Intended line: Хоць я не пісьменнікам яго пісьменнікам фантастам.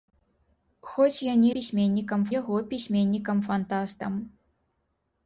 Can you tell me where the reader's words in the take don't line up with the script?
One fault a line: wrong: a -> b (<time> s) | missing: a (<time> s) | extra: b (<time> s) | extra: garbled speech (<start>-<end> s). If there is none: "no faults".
no faults